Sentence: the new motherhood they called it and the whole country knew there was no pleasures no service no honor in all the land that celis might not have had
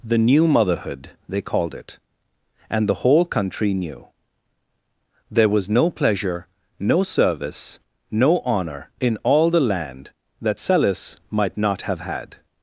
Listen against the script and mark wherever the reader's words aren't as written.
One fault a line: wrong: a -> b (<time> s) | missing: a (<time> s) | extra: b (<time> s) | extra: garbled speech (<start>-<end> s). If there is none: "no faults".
wrong: pleasures -> pleasure (5.9 s)